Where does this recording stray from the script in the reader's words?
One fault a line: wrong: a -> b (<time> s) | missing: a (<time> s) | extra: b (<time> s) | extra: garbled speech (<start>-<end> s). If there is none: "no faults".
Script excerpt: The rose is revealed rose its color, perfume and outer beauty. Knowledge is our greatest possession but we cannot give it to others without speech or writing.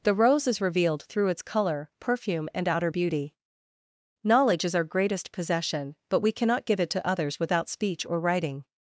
wrong: rose -> through (1.0 s)